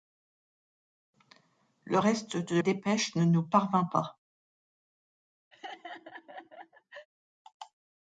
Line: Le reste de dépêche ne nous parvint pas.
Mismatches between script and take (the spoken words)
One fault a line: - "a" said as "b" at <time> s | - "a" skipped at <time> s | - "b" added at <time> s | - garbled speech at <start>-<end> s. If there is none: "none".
none